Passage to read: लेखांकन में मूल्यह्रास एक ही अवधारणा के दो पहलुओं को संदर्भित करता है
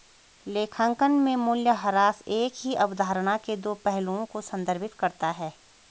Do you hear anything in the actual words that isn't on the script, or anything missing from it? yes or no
no